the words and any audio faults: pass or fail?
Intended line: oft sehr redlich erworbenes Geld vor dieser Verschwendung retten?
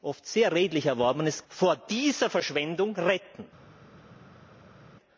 fail